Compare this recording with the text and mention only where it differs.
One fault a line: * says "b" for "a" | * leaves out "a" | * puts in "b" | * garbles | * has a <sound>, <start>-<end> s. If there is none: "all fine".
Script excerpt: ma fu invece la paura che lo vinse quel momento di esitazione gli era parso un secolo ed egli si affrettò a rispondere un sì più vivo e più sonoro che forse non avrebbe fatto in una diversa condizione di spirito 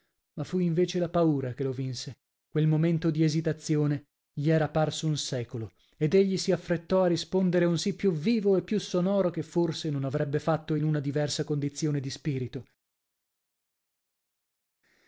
all fine